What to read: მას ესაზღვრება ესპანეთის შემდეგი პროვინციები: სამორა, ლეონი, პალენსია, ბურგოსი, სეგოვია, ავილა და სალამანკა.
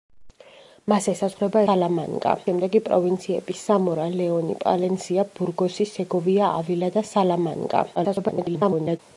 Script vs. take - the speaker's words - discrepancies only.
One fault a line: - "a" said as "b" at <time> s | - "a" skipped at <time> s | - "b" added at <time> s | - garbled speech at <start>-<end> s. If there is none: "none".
- "ესპანეთის" said as "სალამანკა" at 1.7 s
- garbled speech at 8.0-9.0 s